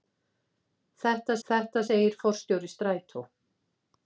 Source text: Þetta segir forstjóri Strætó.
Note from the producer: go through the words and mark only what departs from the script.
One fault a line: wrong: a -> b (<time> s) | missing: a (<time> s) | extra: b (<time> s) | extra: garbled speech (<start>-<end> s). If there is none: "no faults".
extra: þetta (1.5 s)